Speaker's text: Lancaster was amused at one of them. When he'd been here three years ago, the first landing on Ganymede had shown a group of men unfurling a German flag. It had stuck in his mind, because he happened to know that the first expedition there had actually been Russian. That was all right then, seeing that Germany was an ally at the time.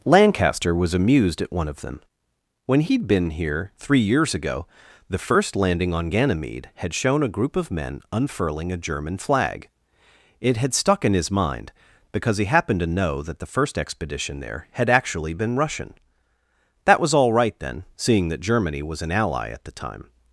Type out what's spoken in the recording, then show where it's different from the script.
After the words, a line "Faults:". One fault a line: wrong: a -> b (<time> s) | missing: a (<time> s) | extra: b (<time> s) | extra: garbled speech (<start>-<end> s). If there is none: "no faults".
Lancaster was amused at one of them. When he'd been here three years ago, the first landing on Ganymede had shown a group of men unfurling a German flag. It had stuck in his mind, because he happened to know that the first expedition there had actually been Russian. That was all right then, seeing that Germany was an ally at the time.
Faults:
no faults